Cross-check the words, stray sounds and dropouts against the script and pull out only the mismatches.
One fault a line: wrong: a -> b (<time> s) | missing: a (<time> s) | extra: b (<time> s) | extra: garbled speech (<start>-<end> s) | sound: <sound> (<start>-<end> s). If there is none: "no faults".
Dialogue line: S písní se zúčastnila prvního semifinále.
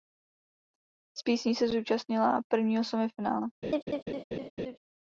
sound: laugh (3.6-4.8 s)